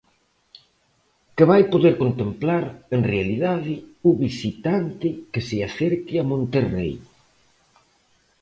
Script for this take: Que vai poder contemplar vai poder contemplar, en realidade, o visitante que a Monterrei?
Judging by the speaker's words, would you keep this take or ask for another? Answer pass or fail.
fail